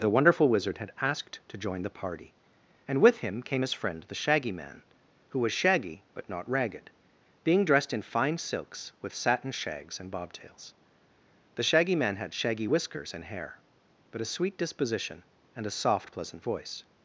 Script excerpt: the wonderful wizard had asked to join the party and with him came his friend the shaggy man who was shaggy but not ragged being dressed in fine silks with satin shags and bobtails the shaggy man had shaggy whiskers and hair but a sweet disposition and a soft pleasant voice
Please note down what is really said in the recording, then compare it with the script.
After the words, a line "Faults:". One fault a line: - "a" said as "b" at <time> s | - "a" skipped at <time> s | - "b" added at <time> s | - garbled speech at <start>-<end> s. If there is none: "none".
the wonderful wizard had asked to join the party and with him came his friend the shaggy man who was shaggy but not ragged being dressed in fine silks with satin shags and bobtails the shaggy man had shaggy whiskers and hair but a sweet disposition and a soft pleasant voice
Faults:
none